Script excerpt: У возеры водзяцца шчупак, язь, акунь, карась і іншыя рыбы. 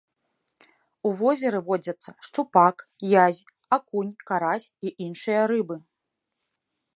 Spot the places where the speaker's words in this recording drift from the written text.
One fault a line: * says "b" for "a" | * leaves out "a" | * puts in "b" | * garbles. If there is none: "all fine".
all fine